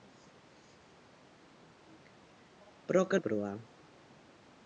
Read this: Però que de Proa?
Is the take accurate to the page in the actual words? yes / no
yes